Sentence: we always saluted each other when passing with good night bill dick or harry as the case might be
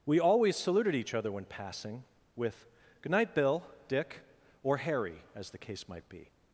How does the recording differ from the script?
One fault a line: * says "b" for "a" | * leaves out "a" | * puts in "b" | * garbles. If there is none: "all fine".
all fine